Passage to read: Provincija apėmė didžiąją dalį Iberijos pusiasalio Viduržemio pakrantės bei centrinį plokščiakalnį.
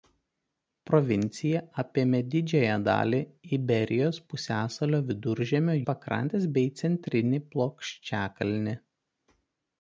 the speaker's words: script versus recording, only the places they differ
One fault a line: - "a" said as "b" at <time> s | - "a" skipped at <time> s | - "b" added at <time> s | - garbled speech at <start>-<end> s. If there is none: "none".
none